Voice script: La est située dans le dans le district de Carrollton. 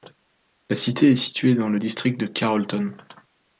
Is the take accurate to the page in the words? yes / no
no